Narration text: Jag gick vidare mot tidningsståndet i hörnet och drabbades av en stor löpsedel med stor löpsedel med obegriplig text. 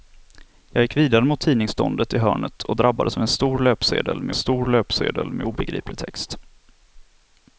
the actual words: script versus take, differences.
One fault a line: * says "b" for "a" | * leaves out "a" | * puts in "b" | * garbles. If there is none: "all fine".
all fine